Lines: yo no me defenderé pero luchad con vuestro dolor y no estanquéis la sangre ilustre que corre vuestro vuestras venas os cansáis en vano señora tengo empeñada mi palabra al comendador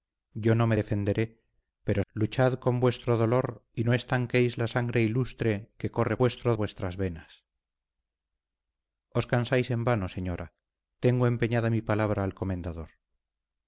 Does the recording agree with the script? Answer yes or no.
yes